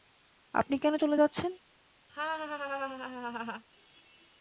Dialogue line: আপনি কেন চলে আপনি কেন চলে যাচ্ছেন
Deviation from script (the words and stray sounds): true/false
true